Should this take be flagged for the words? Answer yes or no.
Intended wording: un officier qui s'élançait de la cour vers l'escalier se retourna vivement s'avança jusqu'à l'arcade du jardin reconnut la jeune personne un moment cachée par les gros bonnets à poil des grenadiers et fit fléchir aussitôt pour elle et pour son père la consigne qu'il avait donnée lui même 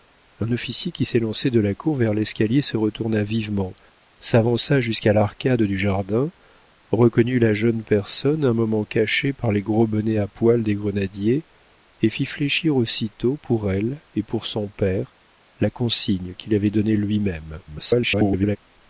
yes